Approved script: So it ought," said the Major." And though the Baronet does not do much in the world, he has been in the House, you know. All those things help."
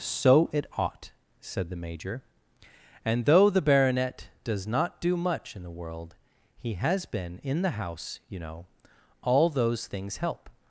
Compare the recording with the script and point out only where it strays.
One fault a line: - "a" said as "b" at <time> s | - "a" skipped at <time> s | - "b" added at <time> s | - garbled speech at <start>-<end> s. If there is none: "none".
none